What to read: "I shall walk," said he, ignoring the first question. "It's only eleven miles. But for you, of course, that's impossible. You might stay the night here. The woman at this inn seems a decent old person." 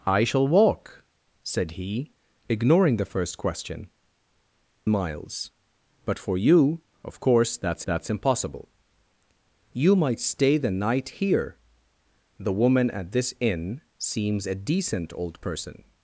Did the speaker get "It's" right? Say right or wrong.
wrong